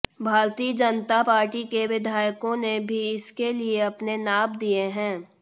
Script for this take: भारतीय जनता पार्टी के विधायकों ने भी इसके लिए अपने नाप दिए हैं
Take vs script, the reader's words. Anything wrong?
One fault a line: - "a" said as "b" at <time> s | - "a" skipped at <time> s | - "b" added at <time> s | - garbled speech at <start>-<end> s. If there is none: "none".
none